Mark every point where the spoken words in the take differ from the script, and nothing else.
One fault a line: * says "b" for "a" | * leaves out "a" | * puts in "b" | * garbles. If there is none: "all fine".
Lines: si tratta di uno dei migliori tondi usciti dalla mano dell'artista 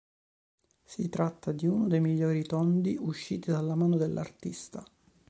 all fine